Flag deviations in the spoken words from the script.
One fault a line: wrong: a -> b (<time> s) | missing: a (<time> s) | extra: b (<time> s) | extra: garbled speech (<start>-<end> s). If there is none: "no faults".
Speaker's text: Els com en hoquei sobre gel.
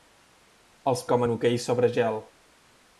no faults